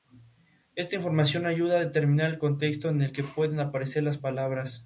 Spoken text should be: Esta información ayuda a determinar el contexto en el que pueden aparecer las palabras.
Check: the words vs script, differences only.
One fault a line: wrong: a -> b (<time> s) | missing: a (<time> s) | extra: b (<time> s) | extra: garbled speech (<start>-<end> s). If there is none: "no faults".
no faults